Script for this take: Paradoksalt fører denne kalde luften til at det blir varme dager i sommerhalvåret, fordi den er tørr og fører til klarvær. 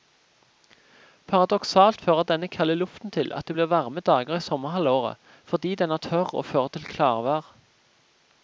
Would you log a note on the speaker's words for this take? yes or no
no